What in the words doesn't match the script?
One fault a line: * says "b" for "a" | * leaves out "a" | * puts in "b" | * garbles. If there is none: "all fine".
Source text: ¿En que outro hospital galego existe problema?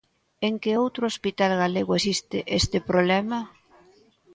* puts in "este"